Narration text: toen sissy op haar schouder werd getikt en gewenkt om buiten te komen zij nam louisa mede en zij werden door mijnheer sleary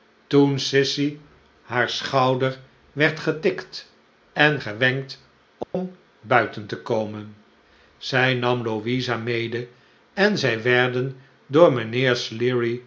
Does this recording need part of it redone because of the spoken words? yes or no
yes